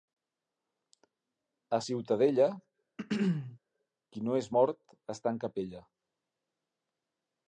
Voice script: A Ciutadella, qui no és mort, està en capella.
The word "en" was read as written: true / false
true